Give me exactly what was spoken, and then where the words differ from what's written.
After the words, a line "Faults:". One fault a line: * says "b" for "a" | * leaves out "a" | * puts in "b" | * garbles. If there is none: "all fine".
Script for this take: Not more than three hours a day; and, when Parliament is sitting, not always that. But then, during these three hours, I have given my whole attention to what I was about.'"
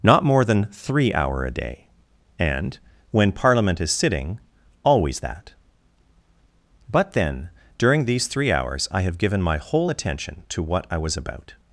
Not more than three hour a day; and, when Parliament is sitting, always that. But then, during these three hours, I have given my whole attention to what I was about.'"
Faults:
* says "hour" for "hours"
* leaves out "not"